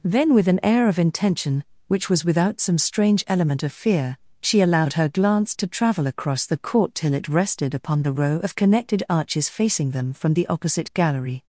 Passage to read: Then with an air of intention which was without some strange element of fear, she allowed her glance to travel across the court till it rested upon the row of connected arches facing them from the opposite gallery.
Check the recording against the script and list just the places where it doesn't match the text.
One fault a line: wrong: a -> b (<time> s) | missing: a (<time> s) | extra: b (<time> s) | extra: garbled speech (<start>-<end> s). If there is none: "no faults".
no faults